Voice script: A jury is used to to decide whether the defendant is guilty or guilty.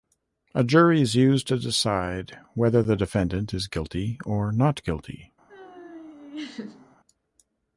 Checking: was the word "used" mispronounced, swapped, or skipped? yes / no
no